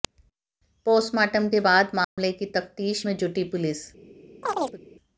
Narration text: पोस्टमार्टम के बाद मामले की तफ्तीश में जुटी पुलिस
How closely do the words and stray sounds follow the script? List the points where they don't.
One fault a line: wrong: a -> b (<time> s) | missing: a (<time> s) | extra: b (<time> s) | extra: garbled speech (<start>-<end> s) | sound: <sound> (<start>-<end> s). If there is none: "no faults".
sound: dropout (2.0-2.2 s)
sound: chirp (4.4-4.8 s)